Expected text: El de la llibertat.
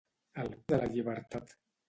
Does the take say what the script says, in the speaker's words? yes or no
yes